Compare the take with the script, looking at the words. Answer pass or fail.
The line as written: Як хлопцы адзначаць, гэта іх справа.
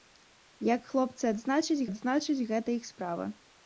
fail